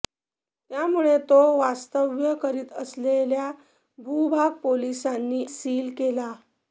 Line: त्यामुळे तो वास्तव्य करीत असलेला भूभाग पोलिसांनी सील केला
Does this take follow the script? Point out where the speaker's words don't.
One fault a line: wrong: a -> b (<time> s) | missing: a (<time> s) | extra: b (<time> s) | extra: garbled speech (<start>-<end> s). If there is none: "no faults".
no faults